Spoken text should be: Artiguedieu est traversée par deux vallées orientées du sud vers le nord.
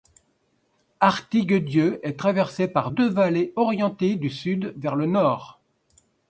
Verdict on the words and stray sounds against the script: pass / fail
pass